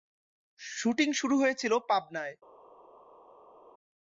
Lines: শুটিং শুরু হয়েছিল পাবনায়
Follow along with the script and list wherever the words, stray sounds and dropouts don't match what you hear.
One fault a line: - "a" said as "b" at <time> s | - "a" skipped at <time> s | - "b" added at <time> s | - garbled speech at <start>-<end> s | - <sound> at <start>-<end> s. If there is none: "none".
none